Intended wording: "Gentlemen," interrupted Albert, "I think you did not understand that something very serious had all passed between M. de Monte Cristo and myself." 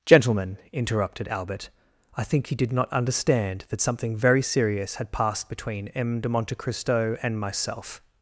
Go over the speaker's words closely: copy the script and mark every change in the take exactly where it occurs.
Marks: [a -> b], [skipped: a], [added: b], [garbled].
"Gentlemen," interrupted Albert, "I think you did not understand that something very serious had [skipped: all] passed between M. de Monte Cristo and myself."